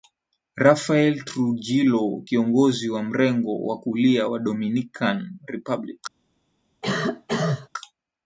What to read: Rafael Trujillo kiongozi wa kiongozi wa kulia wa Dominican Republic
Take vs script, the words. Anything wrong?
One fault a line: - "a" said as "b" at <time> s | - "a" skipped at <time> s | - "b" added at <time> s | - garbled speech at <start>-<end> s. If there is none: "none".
- "kiongozi" said as "mrengo" at 3.0 s